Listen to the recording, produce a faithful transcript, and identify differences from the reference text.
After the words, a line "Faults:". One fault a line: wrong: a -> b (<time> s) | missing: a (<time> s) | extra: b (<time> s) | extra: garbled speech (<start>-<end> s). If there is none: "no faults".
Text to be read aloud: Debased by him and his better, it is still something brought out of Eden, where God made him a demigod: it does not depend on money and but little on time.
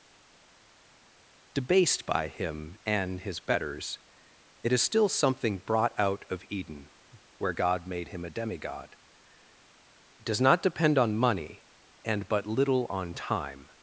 Debased by him and his betters, it is still something brought out of Eden, where God made him a demigod: it does not depend on money and but little on time.
Faults:
wrong: better -> betters (3.4 s)